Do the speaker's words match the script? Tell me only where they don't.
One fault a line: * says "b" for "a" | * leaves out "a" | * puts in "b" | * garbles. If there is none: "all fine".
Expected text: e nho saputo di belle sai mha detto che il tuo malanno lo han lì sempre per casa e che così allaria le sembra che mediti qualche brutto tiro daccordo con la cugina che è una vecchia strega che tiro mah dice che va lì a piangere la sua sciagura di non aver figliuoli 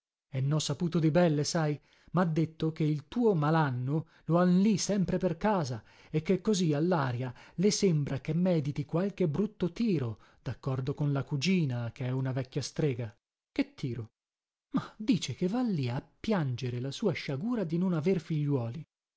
all fine